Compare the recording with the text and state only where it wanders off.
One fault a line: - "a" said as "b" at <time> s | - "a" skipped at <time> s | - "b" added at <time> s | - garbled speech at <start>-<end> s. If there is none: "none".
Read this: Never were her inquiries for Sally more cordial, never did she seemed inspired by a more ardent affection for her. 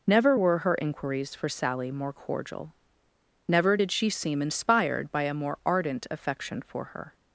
- "seemed" said as "seem" at 4.1 s